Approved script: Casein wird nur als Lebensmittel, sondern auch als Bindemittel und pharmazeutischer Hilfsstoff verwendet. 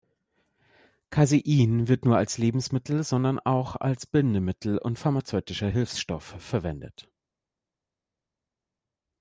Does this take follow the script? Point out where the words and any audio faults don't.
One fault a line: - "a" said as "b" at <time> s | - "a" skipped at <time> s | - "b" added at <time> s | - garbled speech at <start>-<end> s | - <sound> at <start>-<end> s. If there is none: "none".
none